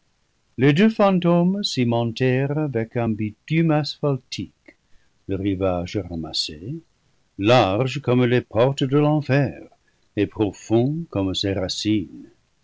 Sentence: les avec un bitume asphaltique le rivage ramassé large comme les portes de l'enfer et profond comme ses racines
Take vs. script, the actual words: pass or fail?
fail